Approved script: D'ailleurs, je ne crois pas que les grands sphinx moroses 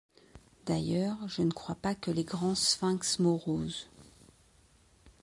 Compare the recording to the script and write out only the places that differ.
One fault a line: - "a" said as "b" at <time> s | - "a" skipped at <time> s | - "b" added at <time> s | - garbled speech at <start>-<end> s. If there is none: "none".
none